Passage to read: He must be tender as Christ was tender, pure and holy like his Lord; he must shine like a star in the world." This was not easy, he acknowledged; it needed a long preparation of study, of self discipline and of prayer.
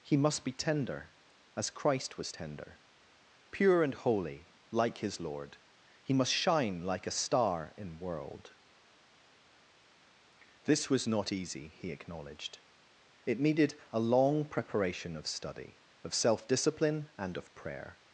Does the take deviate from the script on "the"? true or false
true